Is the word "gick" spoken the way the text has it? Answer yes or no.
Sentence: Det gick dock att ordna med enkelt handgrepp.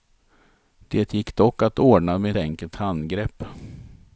yes